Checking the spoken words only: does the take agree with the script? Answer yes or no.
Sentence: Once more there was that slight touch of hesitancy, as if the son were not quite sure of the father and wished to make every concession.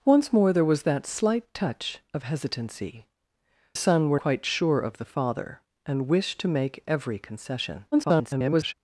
no